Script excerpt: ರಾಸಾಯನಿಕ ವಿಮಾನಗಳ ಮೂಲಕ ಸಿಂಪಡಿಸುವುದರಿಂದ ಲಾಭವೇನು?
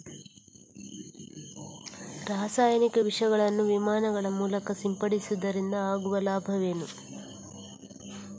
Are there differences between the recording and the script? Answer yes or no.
yes